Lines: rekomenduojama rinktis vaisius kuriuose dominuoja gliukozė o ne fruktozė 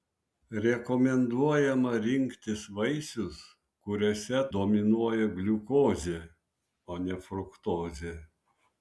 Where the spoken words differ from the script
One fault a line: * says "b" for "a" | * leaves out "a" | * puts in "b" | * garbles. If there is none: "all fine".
all fine